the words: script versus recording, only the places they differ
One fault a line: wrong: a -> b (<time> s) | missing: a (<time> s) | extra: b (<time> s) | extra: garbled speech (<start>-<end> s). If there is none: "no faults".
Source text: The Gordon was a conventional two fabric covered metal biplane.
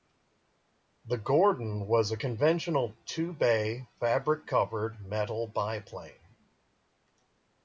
extra: bay (3.3 s)